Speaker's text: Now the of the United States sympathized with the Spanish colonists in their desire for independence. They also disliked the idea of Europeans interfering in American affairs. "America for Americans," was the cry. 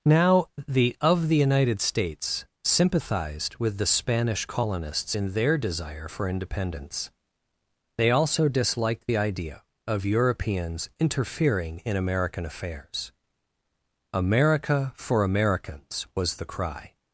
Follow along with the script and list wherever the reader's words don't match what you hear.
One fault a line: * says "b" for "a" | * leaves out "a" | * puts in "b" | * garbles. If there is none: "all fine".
all fine